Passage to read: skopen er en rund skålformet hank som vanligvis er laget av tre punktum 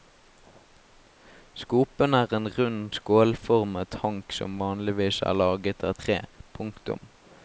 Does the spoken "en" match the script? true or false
true